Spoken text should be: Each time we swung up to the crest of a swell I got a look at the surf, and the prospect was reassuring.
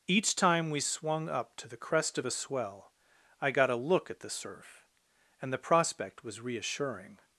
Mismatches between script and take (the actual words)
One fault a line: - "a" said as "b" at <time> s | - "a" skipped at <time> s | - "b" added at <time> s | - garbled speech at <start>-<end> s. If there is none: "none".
none